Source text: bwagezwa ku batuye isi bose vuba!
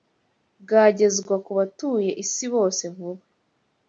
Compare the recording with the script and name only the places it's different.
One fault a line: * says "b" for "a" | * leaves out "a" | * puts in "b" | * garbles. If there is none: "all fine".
all fine